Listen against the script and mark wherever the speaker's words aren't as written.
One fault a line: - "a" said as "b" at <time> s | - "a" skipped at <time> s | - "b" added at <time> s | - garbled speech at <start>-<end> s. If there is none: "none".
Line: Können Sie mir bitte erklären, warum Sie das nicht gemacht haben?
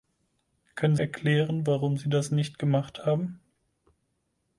- "Sie mir bitte" skipped at 0.9 s